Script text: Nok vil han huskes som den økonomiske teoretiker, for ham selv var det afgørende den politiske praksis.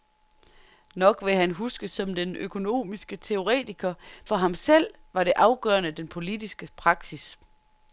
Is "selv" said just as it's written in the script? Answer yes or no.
yes